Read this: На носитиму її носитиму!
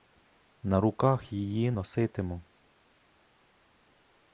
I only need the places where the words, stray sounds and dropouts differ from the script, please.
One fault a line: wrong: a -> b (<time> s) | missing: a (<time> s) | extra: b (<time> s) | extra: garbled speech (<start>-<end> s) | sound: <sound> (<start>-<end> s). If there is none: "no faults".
wrong: носитиму -> руках (0.8 s)